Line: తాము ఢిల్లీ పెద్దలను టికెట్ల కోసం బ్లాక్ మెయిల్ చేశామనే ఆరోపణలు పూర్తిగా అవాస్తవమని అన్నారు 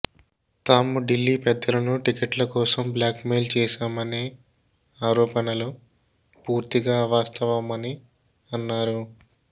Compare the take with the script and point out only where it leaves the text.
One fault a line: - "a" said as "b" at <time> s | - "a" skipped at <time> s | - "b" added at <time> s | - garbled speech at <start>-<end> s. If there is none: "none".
none